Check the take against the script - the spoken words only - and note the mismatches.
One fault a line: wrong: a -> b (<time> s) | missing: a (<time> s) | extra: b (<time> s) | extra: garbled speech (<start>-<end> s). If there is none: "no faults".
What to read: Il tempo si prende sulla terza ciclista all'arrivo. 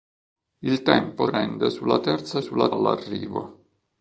missing: si (1.3 s)
wrong: ciclista -> sulla (2.4 s)